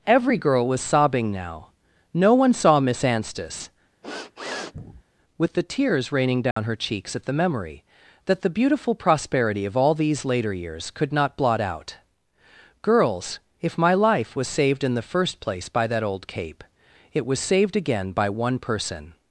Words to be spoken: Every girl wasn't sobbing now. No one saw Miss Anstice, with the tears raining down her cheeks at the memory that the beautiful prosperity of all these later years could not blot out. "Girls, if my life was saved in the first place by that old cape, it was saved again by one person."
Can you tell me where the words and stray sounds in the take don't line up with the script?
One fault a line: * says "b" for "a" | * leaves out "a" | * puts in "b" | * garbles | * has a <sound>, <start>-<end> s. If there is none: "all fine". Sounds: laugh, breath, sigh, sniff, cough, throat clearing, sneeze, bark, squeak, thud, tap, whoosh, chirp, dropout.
* says "was" for "wasn't"
* has a sniff, 4.0-5.0 s
* has a dropout, 6.5-6.6 s